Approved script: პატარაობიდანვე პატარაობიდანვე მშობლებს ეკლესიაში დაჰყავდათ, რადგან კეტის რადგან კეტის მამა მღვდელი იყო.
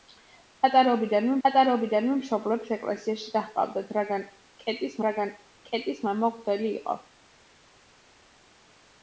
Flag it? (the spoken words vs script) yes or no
no